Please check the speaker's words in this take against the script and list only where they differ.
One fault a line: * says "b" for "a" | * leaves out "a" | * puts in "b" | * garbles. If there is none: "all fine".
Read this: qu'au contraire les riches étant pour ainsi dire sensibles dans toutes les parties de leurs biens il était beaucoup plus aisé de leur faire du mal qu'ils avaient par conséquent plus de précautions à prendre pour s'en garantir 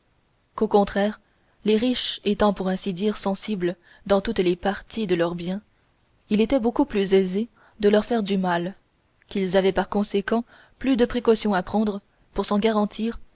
all fine